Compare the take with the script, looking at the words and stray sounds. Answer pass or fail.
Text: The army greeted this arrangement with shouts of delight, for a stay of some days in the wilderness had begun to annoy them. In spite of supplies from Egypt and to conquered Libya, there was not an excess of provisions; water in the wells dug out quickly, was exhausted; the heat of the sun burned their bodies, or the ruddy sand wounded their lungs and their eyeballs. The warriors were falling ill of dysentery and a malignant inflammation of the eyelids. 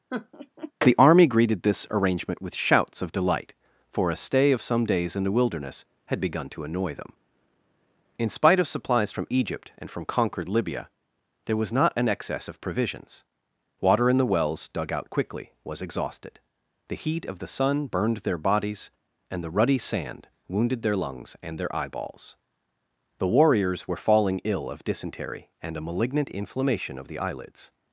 fail